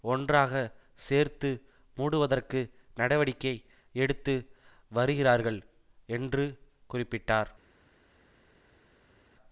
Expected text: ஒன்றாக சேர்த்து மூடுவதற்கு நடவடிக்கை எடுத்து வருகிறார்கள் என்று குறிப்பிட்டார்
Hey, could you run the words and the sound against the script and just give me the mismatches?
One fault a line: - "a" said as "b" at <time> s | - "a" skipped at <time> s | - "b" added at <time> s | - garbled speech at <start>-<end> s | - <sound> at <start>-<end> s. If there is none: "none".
none